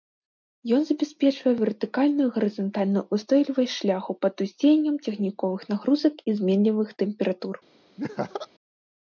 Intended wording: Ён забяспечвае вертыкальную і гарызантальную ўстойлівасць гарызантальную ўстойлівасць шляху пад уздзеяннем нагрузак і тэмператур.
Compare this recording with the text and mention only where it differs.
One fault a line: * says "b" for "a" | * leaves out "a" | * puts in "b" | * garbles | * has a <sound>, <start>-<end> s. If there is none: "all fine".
* leaves out "гарызантальную ўстойлівасць"
* puts in "цягніковых"
* puts in "зменлівых"
* has a laugh, 8.0-8.5 s